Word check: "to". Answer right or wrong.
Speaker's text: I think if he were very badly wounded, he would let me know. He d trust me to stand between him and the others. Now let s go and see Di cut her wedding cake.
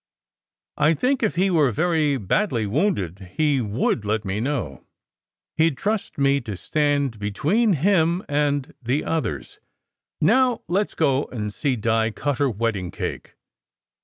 right